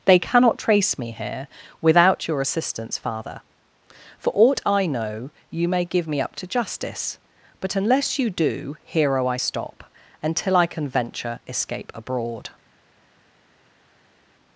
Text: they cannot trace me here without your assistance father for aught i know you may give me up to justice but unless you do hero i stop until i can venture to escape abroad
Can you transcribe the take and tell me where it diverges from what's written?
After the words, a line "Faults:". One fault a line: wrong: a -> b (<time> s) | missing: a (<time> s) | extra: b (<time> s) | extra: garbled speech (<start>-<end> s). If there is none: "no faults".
they cannot trace me here without your assistance father for aught i know you may give me up to justice but unless you do hero i stop until i can venture escape abroad
Faults:
missing: to (11.4 s)